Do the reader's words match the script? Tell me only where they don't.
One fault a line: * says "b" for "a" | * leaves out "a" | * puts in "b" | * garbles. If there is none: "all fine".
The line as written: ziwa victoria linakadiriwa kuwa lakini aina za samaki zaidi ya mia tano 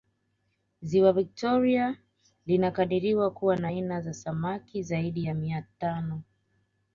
* says "na" for "lakini"